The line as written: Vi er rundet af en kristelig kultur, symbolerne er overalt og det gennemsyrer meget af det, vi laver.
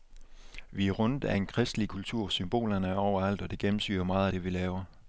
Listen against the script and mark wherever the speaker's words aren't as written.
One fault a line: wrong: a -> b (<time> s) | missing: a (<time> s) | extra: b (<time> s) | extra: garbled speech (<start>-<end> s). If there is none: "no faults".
no faults